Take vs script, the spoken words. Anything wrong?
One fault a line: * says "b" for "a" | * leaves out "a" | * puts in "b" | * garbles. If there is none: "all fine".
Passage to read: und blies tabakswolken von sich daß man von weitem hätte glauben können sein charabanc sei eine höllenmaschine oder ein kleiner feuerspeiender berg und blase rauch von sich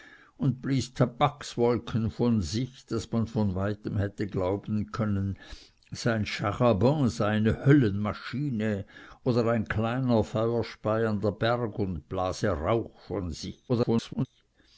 * garbles